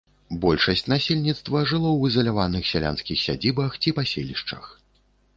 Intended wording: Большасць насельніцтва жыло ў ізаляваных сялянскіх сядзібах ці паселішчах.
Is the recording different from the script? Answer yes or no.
no